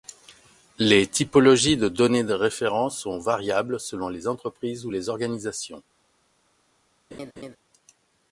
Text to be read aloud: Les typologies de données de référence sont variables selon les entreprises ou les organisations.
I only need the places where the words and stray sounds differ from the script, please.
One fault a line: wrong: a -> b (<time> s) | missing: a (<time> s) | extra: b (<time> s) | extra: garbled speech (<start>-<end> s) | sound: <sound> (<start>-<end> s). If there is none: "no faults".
sound: laugh (7.1-7.6 s)